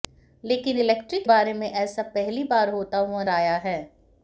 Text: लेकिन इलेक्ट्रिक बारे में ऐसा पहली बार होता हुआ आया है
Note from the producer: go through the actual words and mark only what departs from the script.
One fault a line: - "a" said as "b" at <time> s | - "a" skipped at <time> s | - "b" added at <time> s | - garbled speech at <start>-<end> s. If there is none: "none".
none